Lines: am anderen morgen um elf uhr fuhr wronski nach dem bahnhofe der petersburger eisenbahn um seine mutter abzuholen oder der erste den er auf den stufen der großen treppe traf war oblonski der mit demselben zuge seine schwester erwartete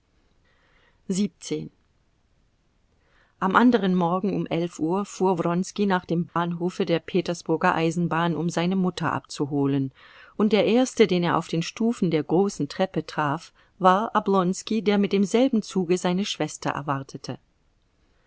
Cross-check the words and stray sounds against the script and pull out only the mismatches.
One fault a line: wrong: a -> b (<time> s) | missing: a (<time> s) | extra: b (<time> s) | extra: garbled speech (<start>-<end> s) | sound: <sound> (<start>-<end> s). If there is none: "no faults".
sound: dropout (6.3-6.4 s)
wrong: oder -> und (10.4 s)